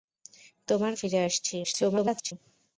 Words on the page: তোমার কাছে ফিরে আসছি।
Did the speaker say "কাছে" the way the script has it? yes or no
no